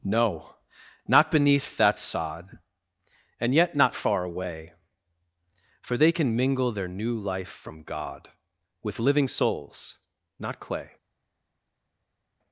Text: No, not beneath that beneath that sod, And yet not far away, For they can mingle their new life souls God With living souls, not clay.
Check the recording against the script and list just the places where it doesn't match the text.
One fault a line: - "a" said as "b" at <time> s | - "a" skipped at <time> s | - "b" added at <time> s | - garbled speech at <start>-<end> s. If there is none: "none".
- "beneath that" skipped at 2.0 s
- "souls" said as "from" at 7.5 s